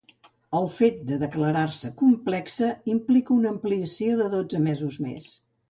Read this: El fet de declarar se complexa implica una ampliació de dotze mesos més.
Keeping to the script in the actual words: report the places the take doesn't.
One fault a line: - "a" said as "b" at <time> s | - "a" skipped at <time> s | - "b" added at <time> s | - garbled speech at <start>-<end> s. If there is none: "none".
none